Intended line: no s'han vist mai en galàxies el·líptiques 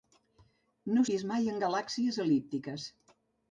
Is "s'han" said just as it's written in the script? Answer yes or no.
no